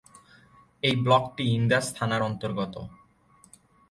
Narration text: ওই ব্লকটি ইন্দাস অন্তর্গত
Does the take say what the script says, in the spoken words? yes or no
no